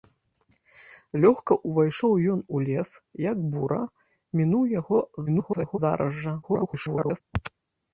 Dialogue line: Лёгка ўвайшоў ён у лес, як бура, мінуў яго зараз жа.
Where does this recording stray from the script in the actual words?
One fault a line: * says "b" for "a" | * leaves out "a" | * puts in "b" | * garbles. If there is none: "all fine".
* garbles
* garbles